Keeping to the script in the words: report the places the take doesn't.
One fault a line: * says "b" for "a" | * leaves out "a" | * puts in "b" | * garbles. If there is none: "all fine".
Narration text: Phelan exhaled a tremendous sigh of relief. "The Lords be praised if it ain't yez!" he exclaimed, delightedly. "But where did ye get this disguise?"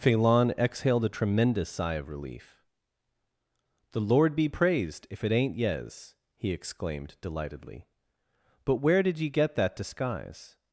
* says "Lord" for "Lords"
* says "that" for "this"